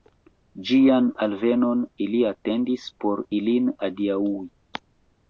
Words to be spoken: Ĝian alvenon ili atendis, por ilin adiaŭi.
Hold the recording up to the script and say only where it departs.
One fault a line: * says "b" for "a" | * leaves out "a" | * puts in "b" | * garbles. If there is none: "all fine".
all fine